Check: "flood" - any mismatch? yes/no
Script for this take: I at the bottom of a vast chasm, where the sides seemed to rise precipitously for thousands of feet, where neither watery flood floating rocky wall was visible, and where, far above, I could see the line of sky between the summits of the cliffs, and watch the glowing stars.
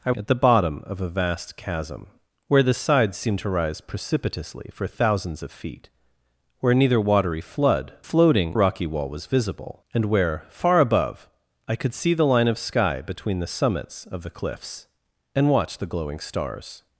no